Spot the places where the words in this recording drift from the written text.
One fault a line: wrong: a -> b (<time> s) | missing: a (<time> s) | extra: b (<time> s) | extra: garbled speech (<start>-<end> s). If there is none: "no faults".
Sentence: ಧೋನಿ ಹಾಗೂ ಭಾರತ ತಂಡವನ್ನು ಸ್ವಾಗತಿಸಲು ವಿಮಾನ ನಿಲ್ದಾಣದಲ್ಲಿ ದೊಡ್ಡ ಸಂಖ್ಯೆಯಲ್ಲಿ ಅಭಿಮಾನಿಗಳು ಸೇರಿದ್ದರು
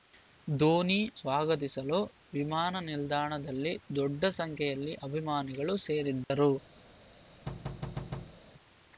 missing: ಹಾಗೂ ಭಾರತ ತಂಡವನ್ನು (1.0 s)